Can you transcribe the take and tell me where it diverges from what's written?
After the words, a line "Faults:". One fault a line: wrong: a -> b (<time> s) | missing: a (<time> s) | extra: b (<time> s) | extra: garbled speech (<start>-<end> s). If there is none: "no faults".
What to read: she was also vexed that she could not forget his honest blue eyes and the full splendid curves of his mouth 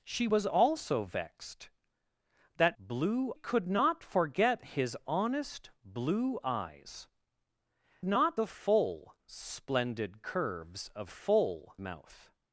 she was also vexed that blue could not forget his honest blue eyes not the full splendid curves of full mouth
Faults:
wrong: she -> blue (2.8 s)
wrong: and -> not (8.0 s)
wrong: his -> full (11.1 s)